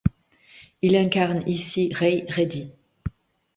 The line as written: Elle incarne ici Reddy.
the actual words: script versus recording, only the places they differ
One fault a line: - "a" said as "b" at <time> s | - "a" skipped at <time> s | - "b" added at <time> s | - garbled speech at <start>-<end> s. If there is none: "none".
- "Elle" said as "Il" at 0.8 s
- "Ray" added at 1.9 s